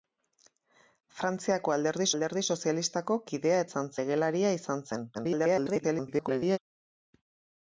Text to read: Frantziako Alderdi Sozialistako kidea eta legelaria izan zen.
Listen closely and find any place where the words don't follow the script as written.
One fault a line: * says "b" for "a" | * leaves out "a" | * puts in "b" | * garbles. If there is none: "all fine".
* puts in "Alderdi"
* says "izan" for "eta"
* garbles